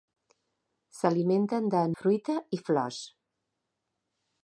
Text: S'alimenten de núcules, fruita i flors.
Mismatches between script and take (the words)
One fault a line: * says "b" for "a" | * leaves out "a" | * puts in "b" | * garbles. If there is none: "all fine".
* leaves out "núcules"